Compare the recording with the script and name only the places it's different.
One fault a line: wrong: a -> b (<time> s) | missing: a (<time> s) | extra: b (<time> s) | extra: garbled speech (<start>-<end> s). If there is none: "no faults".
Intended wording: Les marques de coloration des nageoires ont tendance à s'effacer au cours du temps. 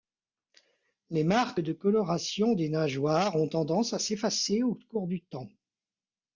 no faults